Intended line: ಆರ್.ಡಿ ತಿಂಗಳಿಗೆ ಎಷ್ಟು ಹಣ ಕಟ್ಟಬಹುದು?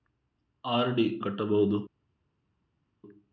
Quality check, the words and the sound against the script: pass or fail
fail